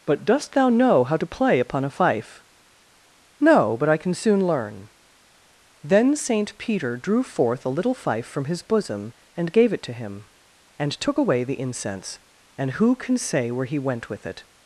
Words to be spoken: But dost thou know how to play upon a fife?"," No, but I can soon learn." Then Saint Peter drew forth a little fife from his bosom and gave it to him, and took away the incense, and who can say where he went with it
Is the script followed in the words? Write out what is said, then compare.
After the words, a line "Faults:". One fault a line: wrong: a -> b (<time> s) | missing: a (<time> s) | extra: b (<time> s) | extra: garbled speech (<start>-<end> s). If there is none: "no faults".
But dost thou know how to play upon a fife?"," No, but I can soon learn." Then Saint Peter drew forth a little fife from his bosom and gave it to him, and took away the incense, and who can say where he went with it
Faults:
no faults